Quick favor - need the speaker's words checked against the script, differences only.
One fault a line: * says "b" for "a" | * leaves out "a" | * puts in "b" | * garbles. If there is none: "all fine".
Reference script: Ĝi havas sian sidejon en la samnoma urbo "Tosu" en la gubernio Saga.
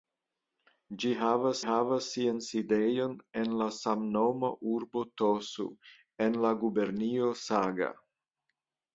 * puts in "havas"